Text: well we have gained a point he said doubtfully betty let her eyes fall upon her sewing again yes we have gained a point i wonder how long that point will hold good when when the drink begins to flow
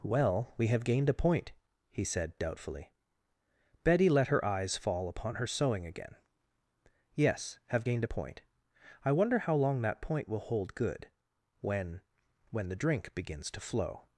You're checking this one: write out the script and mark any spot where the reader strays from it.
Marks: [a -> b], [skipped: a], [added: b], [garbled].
well we have gained a point he said doubtfully betty let her eyes fall upon her sewing again yes [skipped: we] have gained a point i wonder how long that point will hold good when when the drink begins to flow